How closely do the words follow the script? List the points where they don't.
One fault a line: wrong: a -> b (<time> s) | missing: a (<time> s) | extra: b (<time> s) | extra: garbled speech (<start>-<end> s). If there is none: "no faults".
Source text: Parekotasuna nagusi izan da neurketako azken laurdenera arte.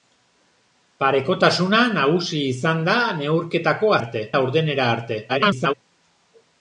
wrong: azken -> arte (4.0 s)
extra: garbled speech (5.3-5.7 s)